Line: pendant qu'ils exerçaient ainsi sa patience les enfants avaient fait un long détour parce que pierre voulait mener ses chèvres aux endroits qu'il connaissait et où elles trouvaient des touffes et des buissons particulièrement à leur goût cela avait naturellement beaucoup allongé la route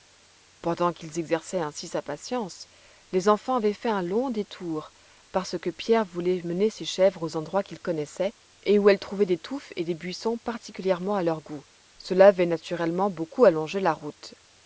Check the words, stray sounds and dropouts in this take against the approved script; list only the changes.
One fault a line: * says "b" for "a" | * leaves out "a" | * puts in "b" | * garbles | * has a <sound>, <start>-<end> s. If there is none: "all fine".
all fine